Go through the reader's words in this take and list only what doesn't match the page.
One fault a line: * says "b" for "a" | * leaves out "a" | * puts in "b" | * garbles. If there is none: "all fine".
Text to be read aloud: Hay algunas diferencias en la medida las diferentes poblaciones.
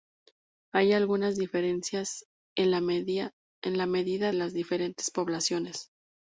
all fine